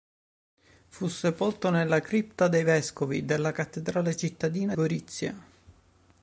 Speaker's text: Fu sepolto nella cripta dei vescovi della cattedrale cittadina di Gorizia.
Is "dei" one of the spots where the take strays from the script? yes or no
no